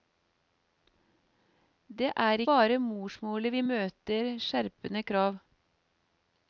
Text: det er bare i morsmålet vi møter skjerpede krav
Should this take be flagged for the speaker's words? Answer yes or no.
no